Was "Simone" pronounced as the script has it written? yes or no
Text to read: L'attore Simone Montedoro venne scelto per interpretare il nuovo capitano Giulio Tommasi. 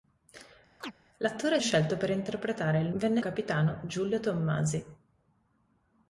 no